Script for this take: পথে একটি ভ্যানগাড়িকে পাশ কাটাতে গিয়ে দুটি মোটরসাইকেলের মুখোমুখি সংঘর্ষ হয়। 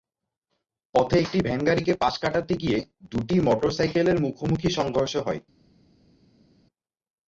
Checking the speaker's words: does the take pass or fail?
pass